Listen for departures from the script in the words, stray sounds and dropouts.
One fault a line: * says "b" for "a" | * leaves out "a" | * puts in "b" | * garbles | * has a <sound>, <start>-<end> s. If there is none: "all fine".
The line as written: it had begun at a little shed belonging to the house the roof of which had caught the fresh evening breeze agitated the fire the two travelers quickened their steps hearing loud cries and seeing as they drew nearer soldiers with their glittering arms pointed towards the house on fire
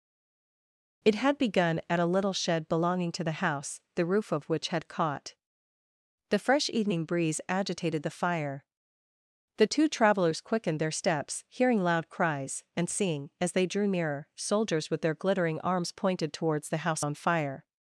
all fine